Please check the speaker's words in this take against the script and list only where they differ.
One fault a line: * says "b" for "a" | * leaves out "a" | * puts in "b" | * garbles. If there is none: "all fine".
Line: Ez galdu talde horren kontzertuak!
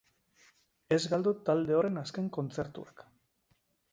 * puts in "azken"